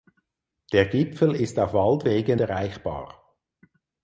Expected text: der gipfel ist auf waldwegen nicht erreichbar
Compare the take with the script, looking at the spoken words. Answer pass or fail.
fail